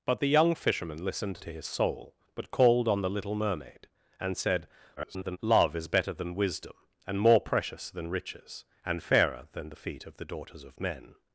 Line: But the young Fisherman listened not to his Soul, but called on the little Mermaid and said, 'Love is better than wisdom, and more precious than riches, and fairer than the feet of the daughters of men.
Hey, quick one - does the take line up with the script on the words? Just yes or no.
no